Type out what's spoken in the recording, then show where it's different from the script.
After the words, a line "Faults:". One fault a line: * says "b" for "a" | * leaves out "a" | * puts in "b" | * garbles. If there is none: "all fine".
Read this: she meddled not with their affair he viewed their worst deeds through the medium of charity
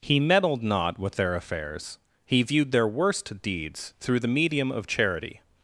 he meddled not with their affairs he viewed their worst deeds through the medium of charity
Faults:
* says "he" for "she"
* says "affairs" for "affair"